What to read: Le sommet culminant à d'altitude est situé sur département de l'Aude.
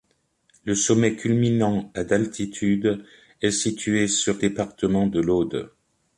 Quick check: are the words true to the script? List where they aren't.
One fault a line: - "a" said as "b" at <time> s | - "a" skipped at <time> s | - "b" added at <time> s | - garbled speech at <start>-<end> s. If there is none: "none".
none